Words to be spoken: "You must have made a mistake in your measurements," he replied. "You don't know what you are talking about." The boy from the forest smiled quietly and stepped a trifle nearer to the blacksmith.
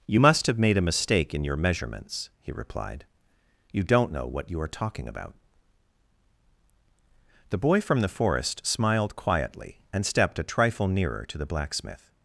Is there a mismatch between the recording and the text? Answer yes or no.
no